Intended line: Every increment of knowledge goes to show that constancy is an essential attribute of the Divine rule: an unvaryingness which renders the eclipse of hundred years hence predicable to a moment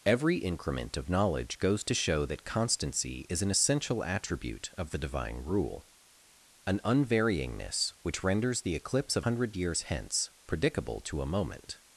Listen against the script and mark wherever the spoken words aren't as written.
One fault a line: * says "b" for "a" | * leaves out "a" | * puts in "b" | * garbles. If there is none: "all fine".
all fine